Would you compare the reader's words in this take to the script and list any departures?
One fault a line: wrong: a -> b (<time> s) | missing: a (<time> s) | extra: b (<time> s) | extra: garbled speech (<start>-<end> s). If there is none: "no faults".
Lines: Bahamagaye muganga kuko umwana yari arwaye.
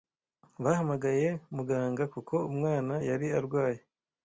no faults